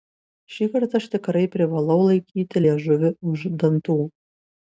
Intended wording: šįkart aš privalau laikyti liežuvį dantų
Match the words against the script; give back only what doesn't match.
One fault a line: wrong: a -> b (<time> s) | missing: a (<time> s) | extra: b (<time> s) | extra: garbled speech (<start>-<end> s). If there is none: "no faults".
extra: tikrai (1.1 s)
extra: už (3.3 s)